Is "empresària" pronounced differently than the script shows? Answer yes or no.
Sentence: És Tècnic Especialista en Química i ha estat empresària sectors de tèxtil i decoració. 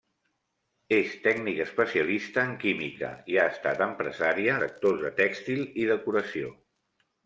no